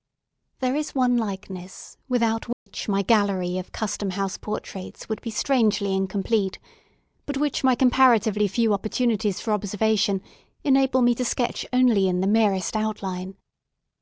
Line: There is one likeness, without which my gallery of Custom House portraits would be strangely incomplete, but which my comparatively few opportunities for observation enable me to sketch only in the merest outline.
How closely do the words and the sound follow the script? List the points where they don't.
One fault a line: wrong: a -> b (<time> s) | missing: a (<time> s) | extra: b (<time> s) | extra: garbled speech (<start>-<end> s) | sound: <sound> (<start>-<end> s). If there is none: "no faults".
sound: dropout (2.5-2.7 s)